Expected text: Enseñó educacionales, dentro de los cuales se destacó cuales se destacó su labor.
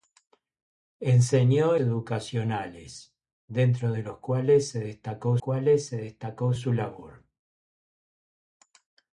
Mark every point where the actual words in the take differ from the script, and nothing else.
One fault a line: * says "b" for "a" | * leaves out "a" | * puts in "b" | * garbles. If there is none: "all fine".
all fine